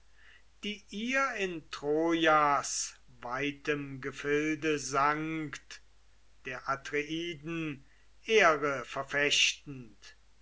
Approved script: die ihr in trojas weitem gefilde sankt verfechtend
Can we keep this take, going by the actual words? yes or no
no